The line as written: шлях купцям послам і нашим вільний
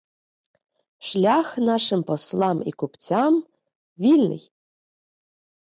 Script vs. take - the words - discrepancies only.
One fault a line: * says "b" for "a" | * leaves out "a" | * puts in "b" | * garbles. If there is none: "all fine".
* says "нашим" for "купцям"
* says "купцям" for "нашим"